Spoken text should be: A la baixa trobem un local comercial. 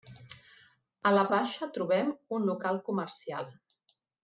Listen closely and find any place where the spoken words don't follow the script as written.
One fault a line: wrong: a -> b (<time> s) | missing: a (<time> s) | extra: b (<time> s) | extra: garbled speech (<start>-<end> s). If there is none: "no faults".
no faults